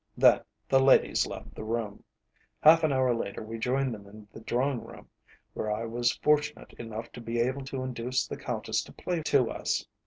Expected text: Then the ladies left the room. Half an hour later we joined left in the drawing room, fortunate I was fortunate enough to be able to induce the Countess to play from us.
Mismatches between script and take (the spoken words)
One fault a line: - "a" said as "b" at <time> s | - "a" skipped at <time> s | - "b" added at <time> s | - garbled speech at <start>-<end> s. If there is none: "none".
- "left" said as "them" at 3.9 s
- "fortunate" said as "where" at 5.5 s
- "from" said as "to" at 9.2 s